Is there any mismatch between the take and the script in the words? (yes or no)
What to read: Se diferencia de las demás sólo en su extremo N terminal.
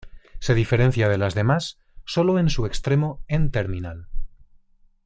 no